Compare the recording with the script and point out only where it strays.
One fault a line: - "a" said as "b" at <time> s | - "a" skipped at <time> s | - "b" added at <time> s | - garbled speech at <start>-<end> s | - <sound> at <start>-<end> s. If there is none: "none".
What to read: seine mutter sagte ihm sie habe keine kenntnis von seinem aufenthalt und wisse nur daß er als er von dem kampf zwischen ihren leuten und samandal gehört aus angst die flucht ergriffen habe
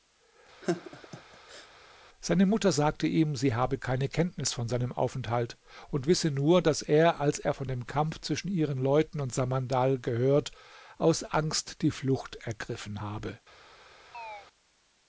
- laugh at 0.6-1.7 s
- chirp at 14.1-14.5 s